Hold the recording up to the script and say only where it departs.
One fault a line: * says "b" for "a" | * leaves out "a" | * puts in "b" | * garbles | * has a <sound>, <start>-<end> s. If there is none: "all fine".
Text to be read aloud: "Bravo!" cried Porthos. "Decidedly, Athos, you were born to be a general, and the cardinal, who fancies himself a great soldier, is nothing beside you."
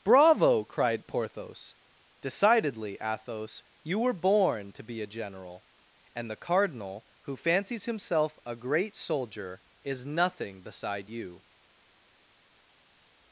all fine